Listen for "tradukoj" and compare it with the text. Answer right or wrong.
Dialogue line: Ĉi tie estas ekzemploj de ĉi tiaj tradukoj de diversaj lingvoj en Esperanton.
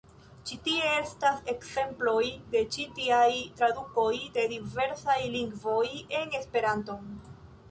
right